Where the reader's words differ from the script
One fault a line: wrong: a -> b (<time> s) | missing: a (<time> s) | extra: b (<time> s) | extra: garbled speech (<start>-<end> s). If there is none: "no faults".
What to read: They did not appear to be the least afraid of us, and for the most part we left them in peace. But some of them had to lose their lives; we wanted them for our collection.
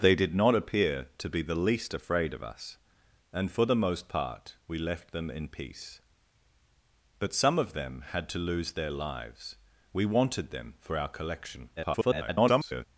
extra: garbled speech (11.8-12.9 s)